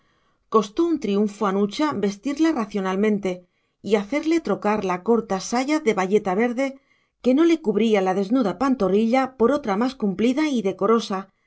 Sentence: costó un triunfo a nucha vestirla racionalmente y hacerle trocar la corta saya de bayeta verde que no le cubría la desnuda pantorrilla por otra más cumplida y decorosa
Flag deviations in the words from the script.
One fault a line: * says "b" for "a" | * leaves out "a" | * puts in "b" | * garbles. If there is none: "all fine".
all fine